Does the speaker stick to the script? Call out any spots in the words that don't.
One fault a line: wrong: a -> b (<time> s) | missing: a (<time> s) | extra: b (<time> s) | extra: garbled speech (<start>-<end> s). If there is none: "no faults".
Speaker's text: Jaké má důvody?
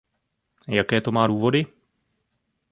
extra: to (1.0 s)